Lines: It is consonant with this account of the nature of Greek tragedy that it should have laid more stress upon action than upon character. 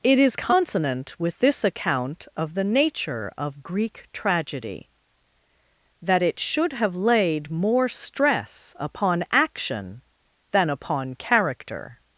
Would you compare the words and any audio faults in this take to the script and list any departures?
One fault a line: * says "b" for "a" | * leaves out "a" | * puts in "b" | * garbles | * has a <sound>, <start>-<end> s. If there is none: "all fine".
all fine